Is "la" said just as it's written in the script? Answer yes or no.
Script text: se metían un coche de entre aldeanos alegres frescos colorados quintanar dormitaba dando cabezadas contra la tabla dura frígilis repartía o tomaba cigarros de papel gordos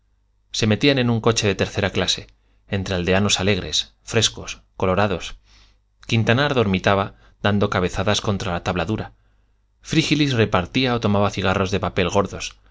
yes